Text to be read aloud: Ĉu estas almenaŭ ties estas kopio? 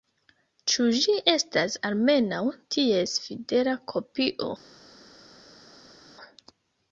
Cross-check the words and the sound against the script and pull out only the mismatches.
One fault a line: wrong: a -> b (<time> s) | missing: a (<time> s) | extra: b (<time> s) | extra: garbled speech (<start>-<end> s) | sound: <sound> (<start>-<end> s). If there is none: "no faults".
extra: ĝi (1.0 s)
wrong: estas -> fidela (3.2 s)